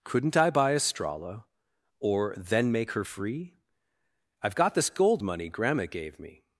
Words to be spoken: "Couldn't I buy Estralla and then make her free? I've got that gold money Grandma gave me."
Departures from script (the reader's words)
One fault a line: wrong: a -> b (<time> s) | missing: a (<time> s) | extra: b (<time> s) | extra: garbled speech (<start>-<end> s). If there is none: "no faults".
wrong: and -> or (2.0 s)
wrong: that -> this (4.7 s)